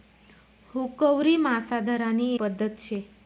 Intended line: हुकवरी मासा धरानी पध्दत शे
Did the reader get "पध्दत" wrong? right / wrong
right